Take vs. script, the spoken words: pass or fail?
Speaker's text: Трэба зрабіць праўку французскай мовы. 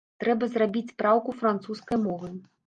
pass